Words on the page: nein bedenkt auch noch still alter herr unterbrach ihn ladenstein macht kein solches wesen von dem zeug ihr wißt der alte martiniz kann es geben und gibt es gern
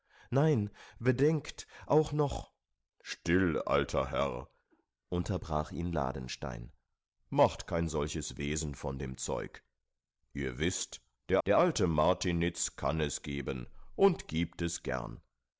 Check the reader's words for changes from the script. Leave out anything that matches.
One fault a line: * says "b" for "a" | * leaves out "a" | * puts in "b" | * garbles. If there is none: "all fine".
* puts in "der"